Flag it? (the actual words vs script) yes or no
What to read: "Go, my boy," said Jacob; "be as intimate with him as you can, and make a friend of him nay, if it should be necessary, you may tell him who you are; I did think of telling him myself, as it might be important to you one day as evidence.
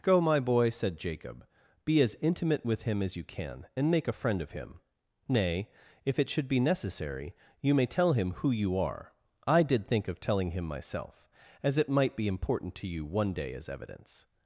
no